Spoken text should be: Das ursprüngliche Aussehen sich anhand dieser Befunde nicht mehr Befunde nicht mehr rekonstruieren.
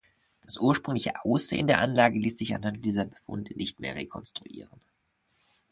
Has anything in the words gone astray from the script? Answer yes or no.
yes